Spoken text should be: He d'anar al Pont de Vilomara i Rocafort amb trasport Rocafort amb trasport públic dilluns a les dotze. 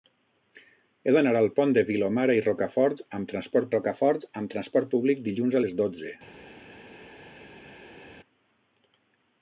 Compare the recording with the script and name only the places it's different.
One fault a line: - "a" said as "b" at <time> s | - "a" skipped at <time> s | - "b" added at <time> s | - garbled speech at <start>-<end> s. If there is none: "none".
none